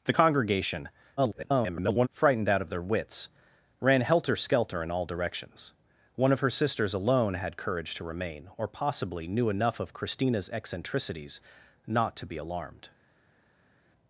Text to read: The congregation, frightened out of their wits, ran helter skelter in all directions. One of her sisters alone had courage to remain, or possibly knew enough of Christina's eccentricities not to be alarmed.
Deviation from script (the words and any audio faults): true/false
true